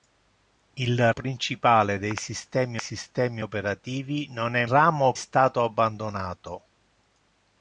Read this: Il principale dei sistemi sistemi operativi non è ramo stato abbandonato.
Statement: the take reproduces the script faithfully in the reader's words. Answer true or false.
true